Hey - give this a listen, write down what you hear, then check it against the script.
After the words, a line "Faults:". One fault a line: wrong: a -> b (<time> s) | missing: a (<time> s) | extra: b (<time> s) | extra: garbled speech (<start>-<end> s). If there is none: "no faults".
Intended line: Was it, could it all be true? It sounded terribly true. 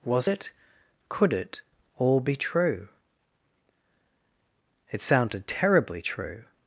Was it, could it all be true? It sounded terribly true.
Faults:
no faults